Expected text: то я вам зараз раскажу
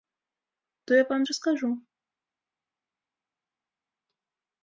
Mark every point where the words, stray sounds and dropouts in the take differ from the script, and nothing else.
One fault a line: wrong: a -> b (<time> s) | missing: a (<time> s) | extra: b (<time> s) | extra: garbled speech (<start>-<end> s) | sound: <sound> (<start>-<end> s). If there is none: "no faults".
missing: зараз (1.2 s)